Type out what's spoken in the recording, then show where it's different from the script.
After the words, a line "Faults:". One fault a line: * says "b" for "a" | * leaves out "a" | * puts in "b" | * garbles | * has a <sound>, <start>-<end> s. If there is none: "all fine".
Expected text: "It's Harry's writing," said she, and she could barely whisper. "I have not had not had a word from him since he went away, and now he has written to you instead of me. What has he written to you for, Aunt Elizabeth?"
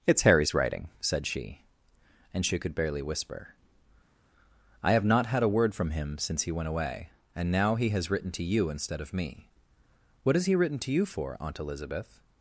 "It's Harry's writing," said she, and she could barely whisper. "I have not had a word from him since he went away, and now he has written to you instead of me. What has he written to you for, Aunt Elizabeth?"
Faults:
* leaves out "not had"